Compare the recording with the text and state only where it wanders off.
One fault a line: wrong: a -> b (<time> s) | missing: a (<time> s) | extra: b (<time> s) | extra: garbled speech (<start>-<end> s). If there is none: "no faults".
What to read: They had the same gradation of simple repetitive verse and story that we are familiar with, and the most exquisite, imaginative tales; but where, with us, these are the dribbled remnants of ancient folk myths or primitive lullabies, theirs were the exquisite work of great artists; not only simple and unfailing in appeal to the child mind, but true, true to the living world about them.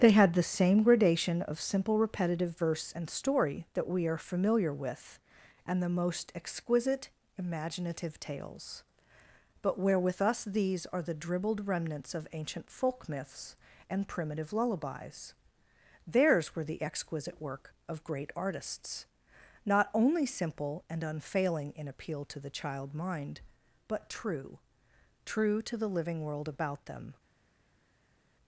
wrong: or -> and (13.9 s)